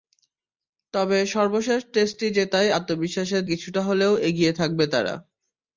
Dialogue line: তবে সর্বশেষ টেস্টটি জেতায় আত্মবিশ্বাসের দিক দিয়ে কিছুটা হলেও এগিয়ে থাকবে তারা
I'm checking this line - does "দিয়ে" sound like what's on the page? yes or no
no